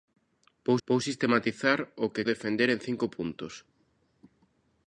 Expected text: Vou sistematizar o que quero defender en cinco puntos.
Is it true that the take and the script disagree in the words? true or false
true